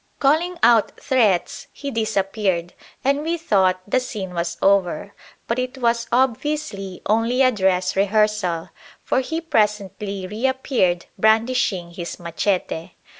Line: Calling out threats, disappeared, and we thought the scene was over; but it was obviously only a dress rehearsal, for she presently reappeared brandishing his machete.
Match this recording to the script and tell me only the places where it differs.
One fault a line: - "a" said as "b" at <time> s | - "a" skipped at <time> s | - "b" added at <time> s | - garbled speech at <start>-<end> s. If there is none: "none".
- "he" added at 1.7 s
- "she" said as "he" at 9.2 s